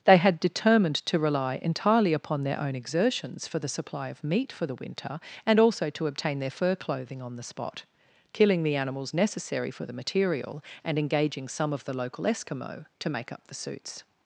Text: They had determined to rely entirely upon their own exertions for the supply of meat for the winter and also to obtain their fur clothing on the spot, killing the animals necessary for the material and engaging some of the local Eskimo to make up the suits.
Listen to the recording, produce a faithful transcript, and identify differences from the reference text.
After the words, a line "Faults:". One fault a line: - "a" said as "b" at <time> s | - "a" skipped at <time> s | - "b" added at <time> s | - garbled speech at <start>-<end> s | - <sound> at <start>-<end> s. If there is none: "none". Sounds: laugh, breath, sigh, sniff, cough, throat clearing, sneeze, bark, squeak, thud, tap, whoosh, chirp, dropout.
They had determined to rely entirely upon their own exertions for the supply of meat for the winter and also to obtain their fur clothing on the spot, killing the animals necessary for the material and engaging some of the local Eskimo to make up the suits.
Faults:
none